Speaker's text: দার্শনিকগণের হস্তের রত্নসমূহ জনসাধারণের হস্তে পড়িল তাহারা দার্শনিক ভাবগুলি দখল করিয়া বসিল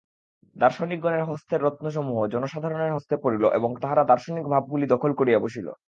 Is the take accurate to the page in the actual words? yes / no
no